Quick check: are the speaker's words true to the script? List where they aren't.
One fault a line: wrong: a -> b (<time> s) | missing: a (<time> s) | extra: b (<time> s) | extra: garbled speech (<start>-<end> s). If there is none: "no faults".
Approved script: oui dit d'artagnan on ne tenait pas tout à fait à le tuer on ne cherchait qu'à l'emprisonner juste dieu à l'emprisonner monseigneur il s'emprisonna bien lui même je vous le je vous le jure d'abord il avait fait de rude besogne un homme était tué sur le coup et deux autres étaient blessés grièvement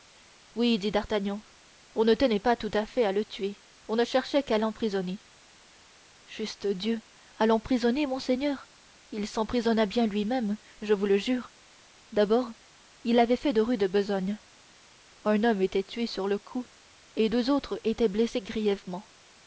missing: je vous le (11.2 s)